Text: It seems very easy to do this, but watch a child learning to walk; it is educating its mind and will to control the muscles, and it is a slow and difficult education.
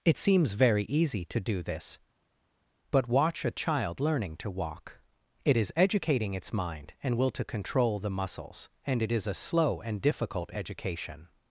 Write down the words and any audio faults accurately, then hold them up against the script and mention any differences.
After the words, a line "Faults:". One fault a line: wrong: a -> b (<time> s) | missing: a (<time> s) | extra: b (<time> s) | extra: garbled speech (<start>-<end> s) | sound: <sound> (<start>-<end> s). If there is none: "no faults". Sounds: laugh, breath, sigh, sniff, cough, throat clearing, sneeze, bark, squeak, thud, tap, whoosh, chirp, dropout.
It seems very easy to do this, but watch a child learning to walk; it is educating its mind and will to control the muscles, and it is a slow and difficult education.
Faults:
no faults